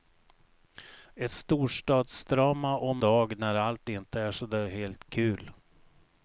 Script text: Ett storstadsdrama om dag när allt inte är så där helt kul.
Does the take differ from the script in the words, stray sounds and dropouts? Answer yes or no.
no